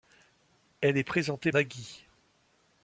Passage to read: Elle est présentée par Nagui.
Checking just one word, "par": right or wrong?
wrong